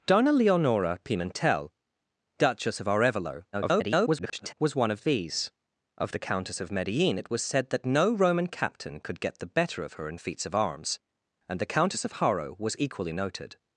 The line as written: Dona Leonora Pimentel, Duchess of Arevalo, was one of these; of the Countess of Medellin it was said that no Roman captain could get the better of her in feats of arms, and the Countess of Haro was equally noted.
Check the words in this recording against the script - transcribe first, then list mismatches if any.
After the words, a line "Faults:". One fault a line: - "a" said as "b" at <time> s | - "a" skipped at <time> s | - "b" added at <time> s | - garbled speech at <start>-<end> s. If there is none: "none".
Dona Leonora Pimentel, Duchess of Arevalo, [garbled] was one of these; of the Countess of Medellin it was said that no Roman captain could get the better of her in feats of arms, and the Countess of Haro was equally noted.
Faults:
- garbled speech at 3.5-4.5 s